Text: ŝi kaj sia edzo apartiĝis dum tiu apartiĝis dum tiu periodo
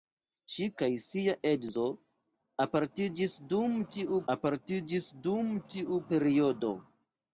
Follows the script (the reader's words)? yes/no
yes